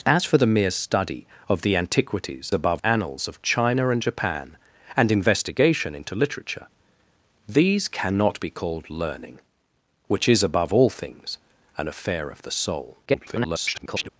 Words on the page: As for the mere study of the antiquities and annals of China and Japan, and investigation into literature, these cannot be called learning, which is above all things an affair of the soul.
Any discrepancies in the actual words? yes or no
yes